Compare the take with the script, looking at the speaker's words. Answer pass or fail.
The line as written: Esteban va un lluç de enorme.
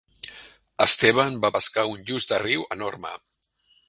fail